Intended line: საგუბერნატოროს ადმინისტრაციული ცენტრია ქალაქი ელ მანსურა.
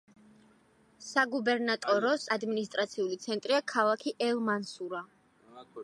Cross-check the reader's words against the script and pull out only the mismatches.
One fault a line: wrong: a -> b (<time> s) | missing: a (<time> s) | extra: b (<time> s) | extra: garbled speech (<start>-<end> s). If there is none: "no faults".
no faults